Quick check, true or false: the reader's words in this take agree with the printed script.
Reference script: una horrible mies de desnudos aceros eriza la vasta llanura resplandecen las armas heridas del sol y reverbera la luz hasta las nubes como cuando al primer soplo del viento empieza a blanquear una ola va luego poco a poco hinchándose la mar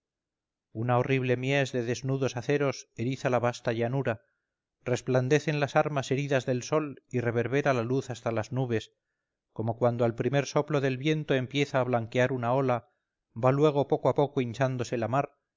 true